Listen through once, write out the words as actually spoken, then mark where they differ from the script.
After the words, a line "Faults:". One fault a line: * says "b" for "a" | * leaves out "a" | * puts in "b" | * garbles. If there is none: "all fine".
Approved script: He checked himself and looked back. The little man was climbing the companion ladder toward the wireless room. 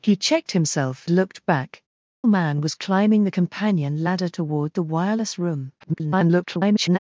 He checked himself looked back. Man was climbing the companion ladder toward the wireless room. [garbled]
Faults:
* leaves out "and"
* leaves out "The little"
* garbles